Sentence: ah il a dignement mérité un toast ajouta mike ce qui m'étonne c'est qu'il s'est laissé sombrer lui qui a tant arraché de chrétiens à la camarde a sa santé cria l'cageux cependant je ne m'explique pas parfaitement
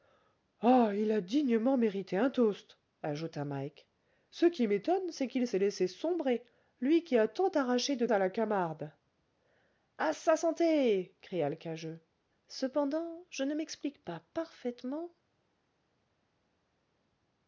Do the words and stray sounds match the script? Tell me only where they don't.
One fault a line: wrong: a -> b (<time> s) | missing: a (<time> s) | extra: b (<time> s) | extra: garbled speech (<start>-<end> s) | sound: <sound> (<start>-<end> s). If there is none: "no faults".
missing: chrétiens (8.1 s)